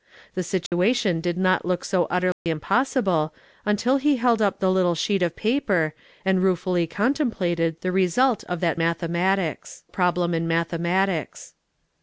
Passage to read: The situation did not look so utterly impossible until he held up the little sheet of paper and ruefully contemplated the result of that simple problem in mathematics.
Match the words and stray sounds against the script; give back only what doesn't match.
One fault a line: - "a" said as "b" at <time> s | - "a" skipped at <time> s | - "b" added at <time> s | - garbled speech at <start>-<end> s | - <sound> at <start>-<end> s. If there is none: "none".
- dropout at 0.7-0.7 s
- dropout at 2.3-2.5 s
- "simple" said as "mathematics" at 8.8 s